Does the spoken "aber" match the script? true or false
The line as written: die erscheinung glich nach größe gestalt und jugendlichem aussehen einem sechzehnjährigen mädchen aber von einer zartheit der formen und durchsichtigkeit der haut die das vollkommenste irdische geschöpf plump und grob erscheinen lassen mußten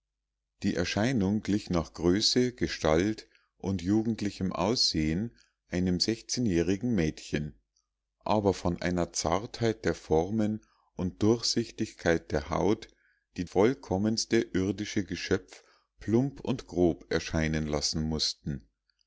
true